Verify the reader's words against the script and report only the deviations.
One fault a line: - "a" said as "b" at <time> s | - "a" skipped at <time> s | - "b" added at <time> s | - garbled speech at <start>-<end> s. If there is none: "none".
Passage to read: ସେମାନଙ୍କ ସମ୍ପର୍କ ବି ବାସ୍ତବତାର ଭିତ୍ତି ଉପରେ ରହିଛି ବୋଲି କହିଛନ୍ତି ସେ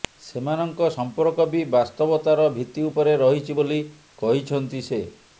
none